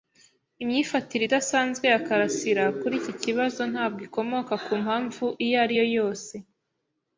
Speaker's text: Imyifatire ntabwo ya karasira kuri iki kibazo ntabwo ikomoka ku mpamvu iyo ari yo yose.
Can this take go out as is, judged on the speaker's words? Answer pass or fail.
fail